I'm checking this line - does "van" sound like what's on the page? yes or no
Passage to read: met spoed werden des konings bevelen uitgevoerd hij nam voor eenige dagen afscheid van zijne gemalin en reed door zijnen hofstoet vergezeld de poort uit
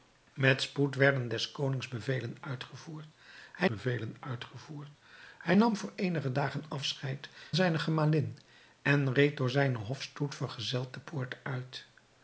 no